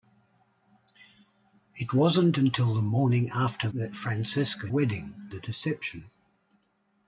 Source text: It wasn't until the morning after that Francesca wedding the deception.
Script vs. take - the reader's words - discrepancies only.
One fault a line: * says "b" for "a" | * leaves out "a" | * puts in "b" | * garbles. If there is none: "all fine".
all fine